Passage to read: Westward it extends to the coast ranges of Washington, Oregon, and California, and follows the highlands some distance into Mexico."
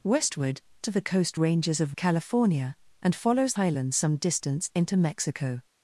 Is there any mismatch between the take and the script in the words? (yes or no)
yes